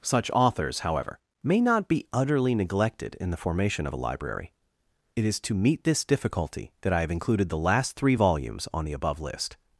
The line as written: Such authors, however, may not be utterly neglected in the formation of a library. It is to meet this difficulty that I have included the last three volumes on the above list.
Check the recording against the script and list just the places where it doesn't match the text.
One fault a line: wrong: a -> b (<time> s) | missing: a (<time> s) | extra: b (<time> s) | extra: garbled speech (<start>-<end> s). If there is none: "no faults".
no faults